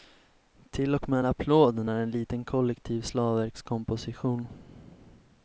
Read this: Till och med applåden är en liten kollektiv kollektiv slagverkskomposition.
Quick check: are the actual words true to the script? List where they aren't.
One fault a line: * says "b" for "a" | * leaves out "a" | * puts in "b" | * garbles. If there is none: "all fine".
* leaves out "kollektiv"